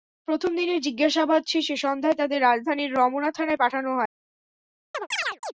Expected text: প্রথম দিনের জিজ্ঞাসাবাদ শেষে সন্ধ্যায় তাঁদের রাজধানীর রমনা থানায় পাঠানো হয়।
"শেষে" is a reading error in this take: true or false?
false